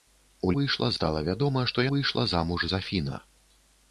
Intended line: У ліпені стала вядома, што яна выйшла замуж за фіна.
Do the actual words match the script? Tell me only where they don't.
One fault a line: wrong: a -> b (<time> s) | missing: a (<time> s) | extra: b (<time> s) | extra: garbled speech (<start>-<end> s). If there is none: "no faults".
wrong: ліпені -> выйшла (0.6 s)
missing: яна (1.9 s)